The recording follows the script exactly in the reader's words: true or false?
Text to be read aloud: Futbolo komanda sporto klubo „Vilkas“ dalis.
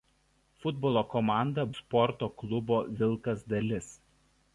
true